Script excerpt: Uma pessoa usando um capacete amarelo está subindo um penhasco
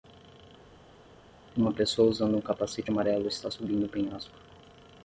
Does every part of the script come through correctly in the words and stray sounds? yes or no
yes